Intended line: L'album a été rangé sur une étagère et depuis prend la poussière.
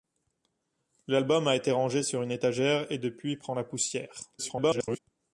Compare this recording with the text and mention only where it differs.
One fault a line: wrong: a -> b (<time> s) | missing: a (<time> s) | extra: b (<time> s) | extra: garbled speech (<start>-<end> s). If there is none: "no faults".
extra: garbled speech (4.4-5.0 s)